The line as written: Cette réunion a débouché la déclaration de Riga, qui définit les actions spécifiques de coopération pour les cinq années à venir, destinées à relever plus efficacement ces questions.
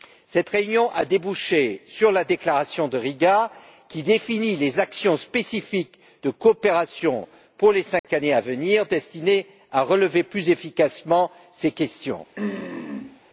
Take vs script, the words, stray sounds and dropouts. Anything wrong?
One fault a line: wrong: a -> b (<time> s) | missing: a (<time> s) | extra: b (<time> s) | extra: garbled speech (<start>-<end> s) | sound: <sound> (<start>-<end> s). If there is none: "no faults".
extra: sur (1.9 s)
sound: dropout (8.0-8.0 s)
sound: throat clearing (12.4-13.2 s)